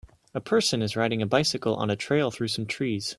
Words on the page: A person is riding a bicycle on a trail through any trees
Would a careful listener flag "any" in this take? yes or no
yes